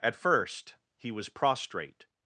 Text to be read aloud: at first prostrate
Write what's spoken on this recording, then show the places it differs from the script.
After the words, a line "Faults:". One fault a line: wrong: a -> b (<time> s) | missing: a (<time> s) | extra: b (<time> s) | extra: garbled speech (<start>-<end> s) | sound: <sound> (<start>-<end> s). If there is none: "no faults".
at first he was prostrate
Faults:
extra: he was (1.0 s)